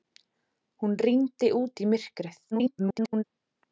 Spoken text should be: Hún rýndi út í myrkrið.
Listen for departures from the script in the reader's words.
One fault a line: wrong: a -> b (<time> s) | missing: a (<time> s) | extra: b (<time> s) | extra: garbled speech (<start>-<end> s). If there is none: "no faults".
extra: garbled speech (2.5-3.2 s)